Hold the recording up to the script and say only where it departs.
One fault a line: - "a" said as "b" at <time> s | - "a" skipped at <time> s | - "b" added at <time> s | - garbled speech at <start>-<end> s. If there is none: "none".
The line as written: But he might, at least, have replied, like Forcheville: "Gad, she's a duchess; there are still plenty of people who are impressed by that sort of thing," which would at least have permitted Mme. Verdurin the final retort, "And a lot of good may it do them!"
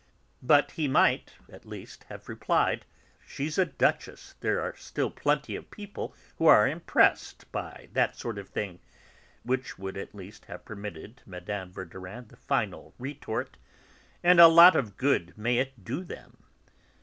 - "like Forcheville Gad" skipped at 2.9 s